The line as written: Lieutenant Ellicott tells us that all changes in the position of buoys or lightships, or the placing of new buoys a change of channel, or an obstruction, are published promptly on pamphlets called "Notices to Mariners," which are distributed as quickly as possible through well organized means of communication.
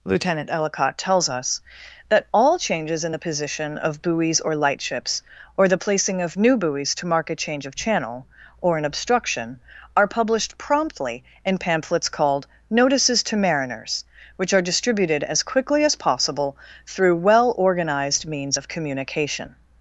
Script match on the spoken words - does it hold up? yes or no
no